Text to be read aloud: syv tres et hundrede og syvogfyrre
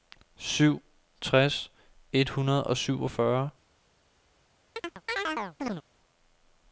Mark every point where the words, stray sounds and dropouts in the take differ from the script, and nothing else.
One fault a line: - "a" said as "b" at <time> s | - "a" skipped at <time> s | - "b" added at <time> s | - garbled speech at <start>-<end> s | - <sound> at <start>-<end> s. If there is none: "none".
- chirp at 4.8-5.8 s